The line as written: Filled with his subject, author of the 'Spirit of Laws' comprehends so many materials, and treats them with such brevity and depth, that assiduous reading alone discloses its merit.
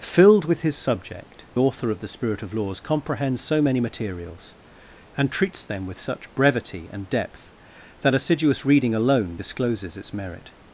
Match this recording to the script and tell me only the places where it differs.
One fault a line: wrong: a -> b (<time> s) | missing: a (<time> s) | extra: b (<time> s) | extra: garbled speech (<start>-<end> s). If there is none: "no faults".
no faults